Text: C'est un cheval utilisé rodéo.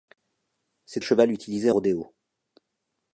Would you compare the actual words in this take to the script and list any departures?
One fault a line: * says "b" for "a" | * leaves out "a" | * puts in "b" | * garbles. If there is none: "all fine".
all fine